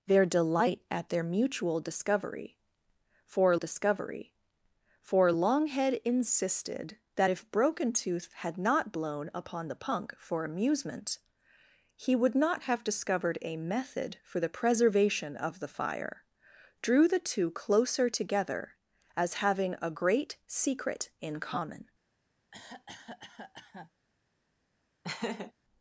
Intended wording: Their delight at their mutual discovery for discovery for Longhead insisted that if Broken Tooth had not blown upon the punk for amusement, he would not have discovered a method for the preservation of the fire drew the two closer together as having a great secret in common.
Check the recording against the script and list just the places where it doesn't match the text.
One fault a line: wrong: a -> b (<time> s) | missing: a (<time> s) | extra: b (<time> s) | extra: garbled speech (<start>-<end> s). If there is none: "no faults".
no faults